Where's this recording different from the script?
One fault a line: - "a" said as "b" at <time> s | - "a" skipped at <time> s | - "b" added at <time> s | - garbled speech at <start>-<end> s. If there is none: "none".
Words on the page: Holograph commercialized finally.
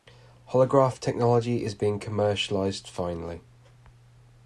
- "technology is being" added at 1.0 s